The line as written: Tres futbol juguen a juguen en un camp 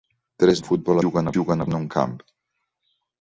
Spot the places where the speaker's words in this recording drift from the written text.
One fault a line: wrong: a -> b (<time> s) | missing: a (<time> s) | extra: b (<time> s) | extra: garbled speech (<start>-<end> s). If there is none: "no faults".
no faults